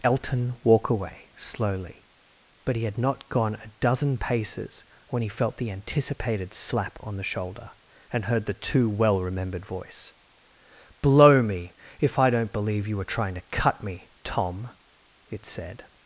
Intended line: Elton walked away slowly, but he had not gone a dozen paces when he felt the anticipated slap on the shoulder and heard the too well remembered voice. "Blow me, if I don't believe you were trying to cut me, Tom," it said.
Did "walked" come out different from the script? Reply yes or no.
yes